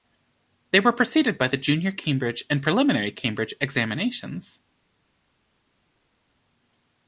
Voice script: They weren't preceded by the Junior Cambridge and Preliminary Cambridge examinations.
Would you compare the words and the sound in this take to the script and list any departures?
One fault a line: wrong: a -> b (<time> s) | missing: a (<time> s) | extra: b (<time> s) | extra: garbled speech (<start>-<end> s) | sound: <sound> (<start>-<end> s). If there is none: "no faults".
wrong: weren't -> were (0.8 s)